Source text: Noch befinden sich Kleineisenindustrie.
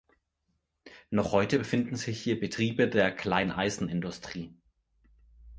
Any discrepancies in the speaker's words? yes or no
yes